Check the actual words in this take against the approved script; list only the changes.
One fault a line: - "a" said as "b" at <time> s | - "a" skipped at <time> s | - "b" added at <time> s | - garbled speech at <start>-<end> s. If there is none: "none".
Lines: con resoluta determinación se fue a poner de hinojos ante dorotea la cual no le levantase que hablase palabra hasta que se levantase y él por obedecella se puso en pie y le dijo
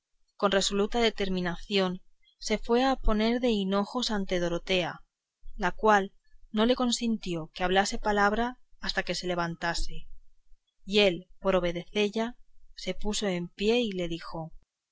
- "levantase" said as "consintió" at 6.7 s